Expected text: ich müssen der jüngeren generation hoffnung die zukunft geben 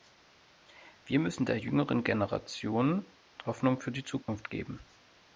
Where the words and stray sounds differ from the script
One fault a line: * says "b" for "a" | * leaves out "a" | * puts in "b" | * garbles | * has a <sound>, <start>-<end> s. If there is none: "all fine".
* says "wir" for "ich"
* puts in "für"
* has a dropout, 4.2-4.3 s